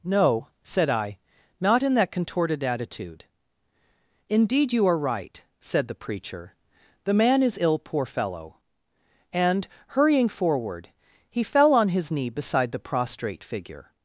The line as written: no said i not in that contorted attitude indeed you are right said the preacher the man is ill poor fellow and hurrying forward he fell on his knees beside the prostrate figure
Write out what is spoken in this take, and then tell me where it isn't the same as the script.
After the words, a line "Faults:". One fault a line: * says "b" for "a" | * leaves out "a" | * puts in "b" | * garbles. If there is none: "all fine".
no said i not in that contorted attitude indeed you are right said the preacher the man is ill poor fellow and hurrying forward he fell on his knee beside the prostrate figure
Faults:
* says "knee" for "knees"